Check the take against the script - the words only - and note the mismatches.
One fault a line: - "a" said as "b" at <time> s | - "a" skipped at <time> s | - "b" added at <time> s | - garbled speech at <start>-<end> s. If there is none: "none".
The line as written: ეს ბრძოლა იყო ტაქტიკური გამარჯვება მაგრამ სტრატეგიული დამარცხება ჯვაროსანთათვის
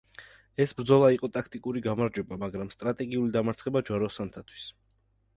none